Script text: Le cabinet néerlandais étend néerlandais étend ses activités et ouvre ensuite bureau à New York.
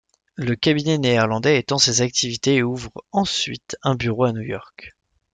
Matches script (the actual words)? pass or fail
fail